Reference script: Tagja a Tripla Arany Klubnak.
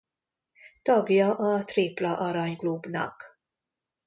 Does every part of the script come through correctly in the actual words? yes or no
yes